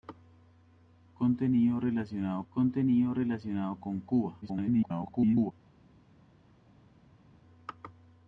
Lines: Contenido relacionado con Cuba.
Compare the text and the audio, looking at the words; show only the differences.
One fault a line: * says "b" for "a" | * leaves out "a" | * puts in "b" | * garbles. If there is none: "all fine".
* puts in "contenido relacionado"
* garbles